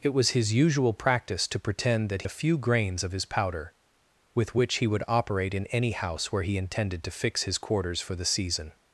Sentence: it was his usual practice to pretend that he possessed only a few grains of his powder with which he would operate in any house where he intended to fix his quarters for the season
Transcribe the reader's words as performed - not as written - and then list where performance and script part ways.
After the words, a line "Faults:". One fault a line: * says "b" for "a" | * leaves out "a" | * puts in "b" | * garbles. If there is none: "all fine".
it was his usual practice to pretend that a few grains of his powder with which he would operate in any house where he intended to fix his quarters for the season
Faults:
* leaves out "he possessed only"